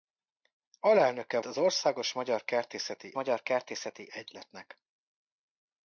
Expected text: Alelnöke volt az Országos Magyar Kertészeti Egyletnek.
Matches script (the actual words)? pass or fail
fail